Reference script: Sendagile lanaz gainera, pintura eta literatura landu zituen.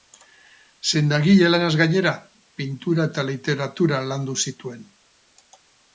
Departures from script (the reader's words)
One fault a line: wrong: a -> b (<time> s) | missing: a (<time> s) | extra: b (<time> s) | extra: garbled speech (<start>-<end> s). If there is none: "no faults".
no faults